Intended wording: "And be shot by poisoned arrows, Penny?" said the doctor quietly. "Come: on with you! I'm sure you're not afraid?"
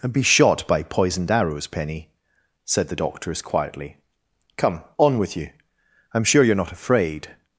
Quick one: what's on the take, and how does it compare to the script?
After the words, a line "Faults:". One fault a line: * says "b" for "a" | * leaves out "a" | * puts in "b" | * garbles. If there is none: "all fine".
"And be shot by poisoned arrows, Penny?" said the doctors quietly. "Come: on with you! I'm sure you're not afraid?"
Faults:
* says "doctors" for "doctor"